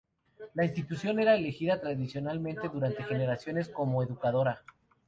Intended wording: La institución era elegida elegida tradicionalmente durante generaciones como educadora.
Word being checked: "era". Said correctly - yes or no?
yes